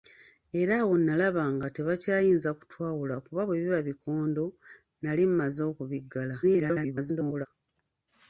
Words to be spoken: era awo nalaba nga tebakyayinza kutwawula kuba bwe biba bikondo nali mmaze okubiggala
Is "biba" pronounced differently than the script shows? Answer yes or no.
no